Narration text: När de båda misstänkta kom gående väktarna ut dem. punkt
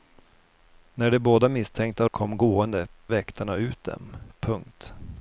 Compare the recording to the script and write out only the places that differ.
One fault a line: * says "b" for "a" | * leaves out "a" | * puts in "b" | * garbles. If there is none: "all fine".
all fine